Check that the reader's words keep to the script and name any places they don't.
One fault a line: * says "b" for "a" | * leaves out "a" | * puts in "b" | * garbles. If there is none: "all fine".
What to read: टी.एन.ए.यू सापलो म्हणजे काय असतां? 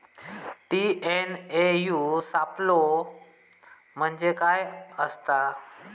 all fine